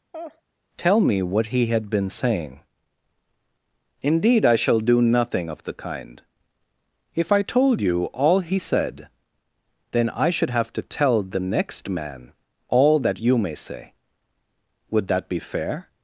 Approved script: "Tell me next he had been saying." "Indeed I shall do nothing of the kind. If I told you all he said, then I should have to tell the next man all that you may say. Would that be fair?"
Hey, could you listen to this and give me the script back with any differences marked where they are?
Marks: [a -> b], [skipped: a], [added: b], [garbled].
"Tell me [next -> what] he had been saying." "Indeed I shall do nothing of the kind. If I told you all he said, then I should have to tell the next man all that you may say. Would that be fair?"